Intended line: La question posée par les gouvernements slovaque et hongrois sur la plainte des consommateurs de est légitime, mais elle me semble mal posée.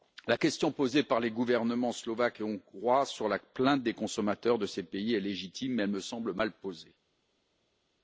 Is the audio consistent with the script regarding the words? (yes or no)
no